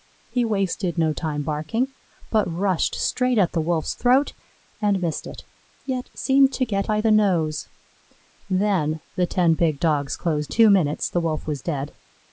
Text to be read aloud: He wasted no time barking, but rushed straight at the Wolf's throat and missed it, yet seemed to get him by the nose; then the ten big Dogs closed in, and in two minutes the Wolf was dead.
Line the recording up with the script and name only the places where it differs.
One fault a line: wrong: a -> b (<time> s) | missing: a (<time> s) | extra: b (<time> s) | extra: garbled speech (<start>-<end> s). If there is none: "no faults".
missing: him (6.9 s)
missing: in and in (10.5 s)